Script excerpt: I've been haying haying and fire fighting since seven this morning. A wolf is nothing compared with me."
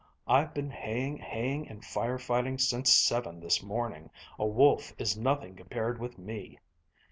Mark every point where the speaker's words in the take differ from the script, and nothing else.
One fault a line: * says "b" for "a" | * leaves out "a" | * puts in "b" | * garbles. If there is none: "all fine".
all fine